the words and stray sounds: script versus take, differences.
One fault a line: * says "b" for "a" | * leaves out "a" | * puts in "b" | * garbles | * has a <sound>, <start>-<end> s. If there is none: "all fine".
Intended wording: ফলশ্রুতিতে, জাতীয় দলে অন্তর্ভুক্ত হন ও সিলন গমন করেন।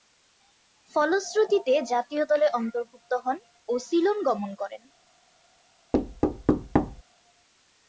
* has a thud, 5.9-7.0 s